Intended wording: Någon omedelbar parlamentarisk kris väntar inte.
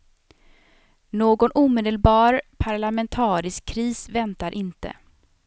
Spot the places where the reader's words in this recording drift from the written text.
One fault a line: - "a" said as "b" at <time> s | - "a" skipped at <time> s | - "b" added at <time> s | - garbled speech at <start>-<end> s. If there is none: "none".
none